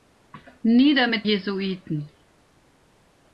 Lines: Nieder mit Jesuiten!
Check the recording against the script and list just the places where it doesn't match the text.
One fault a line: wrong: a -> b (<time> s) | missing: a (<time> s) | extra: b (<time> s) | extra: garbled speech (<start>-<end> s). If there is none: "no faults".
no faults